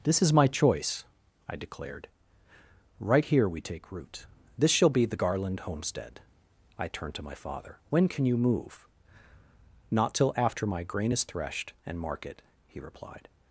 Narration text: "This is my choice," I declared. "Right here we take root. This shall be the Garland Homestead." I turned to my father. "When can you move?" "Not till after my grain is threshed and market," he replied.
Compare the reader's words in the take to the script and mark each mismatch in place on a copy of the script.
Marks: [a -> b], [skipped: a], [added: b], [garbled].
"This is my choice," I declared. "Right here we take root. This shall be the Garland Homestead." I turned to my father. "When can you move?" "Not till after my grain is threshed and market," he replied.